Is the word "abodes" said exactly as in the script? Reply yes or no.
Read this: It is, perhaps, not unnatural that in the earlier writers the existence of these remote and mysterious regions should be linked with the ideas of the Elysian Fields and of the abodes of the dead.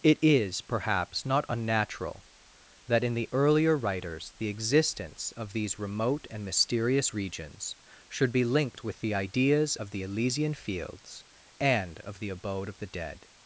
no